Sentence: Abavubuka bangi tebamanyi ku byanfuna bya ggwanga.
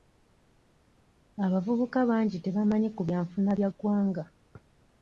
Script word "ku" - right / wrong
right